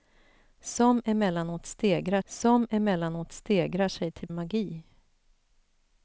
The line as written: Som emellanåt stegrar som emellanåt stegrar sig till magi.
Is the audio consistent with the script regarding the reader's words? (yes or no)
yes